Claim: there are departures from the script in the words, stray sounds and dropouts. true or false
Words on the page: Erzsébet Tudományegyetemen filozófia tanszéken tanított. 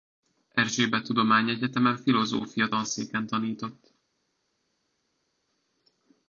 false